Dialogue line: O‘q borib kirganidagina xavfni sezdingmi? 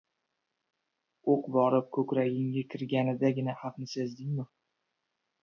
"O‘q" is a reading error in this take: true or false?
false